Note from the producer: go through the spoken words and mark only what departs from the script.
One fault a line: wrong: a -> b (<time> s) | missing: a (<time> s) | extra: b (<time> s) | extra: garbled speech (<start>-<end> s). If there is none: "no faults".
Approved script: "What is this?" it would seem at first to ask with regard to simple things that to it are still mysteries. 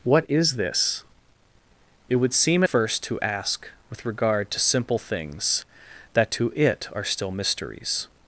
missing: at (2.6 s)